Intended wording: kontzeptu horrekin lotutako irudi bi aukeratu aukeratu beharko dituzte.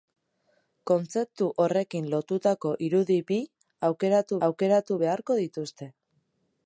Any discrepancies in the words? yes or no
no